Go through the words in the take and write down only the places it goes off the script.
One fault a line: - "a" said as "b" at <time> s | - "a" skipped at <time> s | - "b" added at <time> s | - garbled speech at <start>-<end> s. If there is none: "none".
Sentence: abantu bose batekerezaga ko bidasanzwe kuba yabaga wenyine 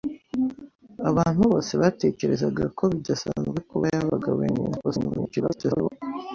- garbled speech at 4.8-5.9 s